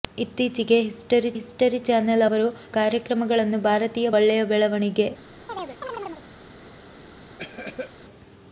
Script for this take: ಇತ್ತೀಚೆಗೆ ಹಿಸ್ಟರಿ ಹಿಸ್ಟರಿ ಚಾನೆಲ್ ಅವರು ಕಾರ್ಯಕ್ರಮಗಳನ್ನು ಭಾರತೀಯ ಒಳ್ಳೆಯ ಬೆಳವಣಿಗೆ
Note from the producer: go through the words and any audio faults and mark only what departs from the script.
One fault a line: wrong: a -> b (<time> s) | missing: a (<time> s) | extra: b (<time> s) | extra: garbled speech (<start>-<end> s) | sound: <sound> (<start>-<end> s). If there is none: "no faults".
sound: chirp (5.5-6.2 s)
sound: cough (7.4-7.9 s)